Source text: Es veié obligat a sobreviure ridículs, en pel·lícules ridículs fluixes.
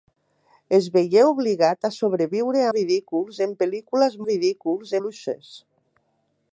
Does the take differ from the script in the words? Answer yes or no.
no